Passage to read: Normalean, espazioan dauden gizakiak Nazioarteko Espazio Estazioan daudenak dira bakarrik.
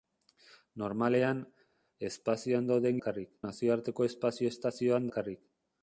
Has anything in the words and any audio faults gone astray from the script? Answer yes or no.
yes